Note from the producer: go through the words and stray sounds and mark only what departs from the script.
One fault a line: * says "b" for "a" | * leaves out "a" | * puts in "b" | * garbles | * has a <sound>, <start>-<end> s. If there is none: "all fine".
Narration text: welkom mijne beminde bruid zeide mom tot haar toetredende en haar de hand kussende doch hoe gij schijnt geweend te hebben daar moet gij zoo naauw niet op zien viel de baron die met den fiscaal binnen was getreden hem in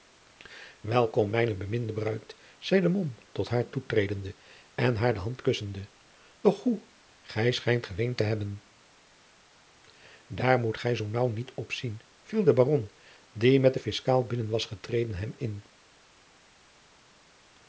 all fine